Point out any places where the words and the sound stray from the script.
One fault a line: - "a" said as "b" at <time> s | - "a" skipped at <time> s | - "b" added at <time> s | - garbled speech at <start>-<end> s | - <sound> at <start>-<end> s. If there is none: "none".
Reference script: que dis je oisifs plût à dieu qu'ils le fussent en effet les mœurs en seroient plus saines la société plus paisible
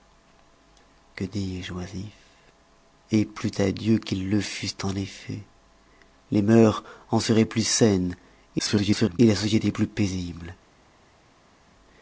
- garbled speech at 8.6-9.2 s